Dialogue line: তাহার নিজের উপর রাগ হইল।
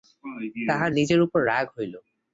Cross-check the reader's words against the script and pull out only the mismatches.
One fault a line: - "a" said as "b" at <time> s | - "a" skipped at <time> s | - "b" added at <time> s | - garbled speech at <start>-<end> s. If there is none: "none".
none